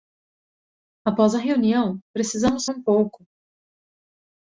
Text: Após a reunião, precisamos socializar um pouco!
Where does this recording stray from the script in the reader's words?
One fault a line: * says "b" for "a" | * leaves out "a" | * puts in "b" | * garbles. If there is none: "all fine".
* leaves out "socializar"